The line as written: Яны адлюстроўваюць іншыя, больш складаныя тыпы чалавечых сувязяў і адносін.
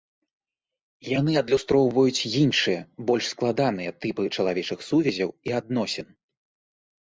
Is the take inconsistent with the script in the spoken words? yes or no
no